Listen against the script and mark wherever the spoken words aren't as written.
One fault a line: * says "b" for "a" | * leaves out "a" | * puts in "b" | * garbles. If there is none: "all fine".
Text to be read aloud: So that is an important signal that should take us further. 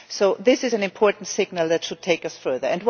* says "this" for "that"